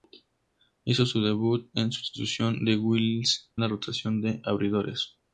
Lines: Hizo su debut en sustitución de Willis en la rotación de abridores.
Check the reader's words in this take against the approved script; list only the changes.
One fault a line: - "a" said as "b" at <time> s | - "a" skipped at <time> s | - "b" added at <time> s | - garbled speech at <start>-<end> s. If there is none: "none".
- "en" skipped at 3.5 s